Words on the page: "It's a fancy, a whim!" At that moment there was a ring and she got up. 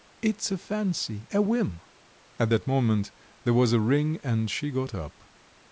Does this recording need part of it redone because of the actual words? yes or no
no